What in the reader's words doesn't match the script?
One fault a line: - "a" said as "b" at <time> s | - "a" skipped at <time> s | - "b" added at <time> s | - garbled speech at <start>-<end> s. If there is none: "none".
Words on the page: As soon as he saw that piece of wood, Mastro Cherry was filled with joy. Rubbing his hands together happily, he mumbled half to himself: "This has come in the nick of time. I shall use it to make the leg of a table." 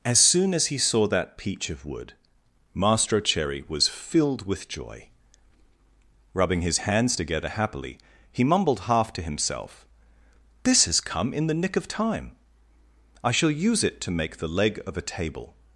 - "piece" said as "peach" at 1.4 s